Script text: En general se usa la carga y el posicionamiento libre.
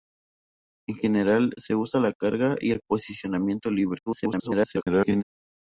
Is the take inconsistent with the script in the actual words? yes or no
yes